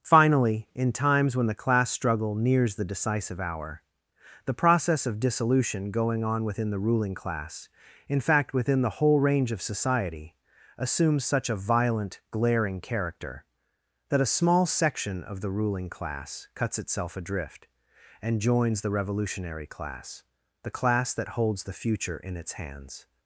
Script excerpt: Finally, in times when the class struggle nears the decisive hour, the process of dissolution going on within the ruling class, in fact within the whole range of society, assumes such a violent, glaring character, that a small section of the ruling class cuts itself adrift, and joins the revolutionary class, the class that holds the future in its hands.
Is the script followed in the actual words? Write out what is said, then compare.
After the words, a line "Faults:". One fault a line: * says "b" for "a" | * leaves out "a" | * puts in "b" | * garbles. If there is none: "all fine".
Finally, in times when the class struggle nears the decisive hour, the process of dissolution going on within the ruling class, in fact within the whole range of society, assumes such a violent, glaring character, that a small section of the ruling class cuts itself adrift, and joins the revolutionary class, the class that holds the future in its hands.
Faults:
all fine